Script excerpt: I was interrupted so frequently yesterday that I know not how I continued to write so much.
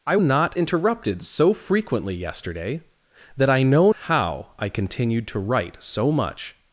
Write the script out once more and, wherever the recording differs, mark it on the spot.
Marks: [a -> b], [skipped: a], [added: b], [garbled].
I [was -> not] interrupted so frequently yesterday that I know [skipped: not] how I continued to write so much.